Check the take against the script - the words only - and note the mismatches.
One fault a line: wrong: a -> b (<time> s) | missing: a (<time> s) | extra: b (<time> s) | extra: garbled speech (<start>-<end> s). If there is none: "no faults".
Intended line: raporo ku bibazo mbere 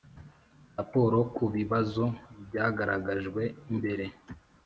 extra: byagaragajwe (2.5 s)